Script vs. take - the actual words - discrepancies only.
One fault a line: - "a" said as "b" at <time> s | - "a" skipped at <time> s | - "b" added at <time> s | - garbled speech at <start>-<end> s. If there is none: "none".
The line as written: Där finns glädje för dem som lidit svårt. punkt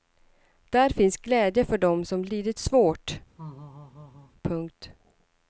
none